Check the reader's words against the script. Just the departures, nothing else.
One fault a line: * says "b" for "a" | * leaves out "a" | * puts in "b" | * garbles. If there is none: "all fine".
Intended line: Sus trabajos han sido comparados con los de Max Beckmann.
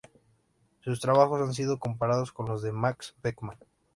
all fine